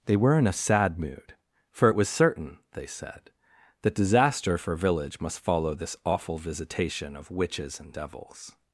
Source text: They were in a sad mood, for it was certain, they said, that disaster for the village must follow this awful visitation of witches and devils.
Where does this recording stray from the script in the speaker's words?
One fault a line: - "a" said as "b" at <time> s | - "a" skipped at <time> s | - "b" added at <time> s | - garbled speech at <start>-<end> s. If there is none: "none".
- "the" skipped at 4.7 s